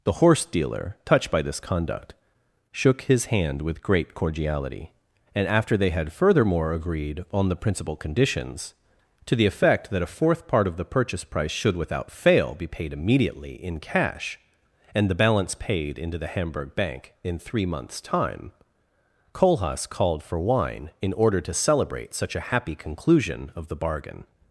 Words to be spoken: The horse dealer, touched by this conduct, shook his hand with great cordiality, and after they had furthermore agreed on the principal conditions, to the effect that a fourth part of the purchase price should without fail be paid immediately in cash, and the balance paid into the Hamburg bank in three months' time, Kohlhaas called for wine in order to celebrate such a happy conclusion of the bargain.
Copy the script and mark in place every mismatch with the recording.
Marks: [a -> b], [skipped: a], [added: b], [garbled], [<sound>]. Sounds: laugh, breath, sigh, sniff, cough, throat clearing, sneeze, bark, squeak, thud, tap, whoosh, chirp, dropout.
The horse dealer, touched by this conduct, shook his hand with great cordiality, and after they had furthermore agreed on the principal conditions, to the effect that a fourth part of the purchase price should without fail be paid immediately in cash, and the balance paid into the Hamburg bank in three months' time, Kohlhaas called for wine in order to celebrate such a happy conclusion of the bargain.